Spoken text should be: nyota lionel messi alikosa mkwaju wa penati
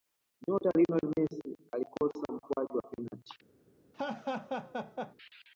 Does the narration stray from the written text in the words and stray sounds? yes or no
yes